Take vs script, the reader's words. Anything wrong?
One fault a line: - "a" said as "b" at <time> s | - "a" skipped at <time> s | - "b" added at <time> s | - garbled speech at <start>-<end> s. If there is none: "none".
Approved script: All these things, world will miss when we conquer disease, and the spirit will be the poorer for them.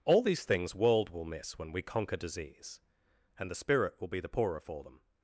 none